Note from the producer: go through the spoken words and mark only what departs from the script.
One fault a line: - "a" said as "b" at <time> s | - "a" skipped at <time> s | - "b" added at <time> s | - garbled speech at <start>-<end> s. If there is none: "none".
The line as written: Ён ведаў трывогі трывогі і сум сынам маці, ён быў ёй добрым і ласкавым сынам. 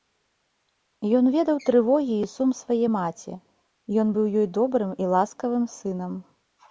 - "трывогі" skipped at 2.1 s
- "сынам" said as "свае" at 2.6 s